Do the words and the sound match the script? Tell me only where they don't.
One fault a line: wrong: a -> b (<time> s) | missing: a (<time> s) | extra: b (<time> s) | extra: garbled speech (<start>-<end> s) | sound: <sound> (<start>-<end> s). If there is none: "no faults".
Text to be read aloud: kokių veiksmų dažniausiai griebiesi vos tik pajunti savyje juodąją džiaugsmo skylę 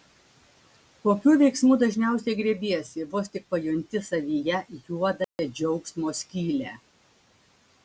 sound: dropout (5.2-5.4 s)